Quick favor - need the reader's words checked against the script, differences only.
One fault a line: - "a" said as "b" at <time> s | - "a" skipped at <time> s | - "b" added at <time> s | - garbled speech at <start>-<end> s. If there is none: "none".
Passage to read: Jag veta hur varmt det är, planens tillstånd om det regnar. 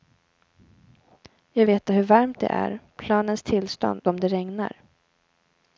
none